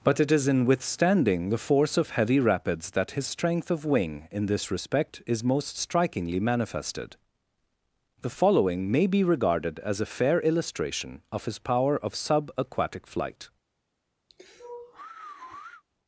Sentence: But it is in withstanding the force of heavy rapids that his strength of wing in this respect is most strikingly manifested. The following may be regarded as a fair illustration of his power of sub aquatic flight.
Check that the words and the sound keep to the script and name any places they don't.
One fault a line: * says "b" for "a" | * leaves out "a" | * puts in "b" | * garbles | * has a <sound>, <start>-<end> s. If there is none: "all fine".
* has a sigh, 14.3-15.8 s